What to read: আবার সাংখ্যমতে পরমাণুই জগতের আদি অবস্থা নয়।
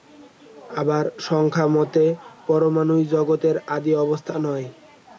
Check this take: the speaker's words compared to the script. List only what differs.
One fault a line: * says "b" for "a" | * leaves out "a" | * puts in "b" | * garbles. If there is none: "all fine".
all fine